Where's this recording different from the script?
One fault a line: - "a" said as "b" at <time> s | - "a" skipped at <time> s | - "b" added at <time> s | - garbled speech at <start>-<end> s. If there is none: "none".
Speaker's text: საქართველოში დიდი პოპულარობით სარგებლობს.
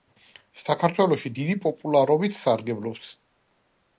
none